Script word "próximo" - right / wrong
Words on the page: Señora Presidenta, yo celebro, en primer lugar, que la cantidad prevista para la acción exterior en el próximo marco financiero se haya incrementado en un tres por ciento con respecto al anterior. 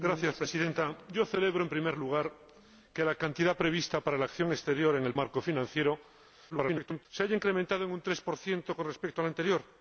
wrong